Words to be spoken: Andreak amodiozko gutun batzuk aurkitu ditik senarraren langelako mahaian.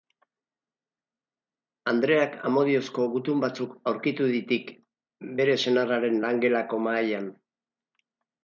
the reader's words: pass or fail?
fail